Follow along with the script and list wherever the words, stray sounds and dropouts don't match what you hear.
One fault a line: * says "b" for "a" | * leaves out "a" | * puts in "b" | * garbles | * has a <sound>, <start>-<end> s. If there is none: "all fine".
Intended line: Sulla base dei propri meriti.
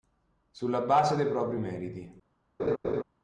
* has a laugh, 2.6-3.0 s